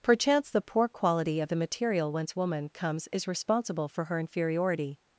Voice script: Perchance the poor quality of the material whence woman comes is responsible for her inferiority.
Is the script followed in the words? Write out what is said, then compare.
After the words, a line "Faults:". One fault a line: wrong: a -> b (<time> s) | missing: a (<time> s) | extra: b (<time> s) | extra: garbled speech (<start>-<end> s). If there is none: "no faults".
Perchance the poor quality of the material whence woman comes is responsible for her inferiority.
Faults:
no faults